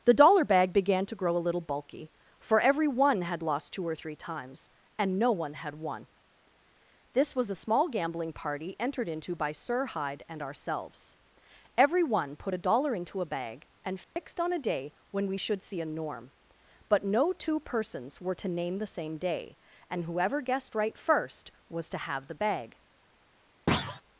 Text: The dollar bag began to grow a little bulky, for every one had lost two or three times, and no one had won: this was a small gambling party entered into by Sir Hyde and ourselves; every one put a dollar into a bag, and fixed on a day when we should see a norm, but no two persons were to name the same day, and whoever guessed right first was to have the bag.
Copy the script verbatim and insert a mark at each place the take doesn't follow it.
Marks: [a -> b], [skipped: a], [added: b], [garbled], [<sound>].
The dollar bag began to grow a little bulky, for every one had lost two or three times, and no one had won: this was a small gambling party entered into by Sir Hyde and ourselves; every one put a dollar into a bag, and fixed [dropout] on a day when we should see a norm, but no two persons were to name the same day, and whoever guessed right first was to have the bag. [thud]